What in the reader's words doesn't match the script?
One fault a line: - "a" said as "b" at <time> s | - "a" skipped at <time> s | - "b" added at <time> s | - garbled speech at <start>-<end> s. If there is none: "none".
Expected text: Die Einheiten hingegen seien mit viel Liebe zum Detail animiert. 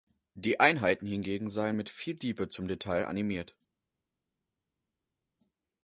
none